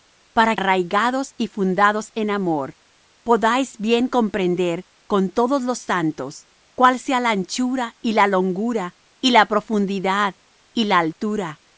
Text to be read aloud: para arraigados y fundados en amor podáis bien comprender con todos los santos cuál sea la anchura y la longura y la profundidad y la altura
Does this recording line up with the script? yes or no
yes